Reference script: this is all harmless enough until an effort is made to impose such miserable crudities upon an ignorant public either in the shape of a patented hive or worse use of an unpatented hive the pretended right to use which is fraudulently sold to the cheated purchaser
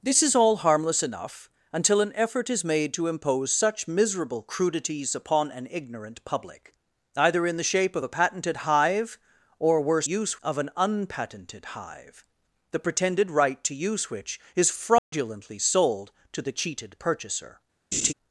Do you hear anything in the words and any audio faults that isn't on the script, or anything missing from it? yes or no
yes